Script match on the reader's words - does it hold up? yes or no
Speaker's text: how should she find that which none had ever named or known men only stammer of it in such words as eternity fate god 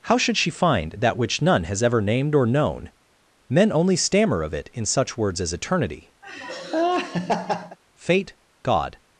no